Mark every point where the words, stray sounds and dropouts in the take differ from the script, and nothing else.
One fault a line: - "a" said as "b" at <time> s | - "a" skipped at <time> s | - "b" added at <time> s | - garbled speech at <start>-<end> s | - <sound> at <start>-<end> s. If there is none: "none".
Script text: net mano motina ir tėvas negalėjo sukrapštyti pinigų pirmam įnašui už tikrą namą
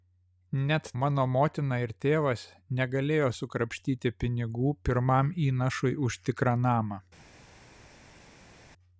none